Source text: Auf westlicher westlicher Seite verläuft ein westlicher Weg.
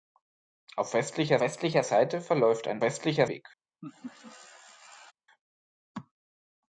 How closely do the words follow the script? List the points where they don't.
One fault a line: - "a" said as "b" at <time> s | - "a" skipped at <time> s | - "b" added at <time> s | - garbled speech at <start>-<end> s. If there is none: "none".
none